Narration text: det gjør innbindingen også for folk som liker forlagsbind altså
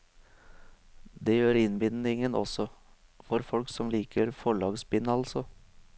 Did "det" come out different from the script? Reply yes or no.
no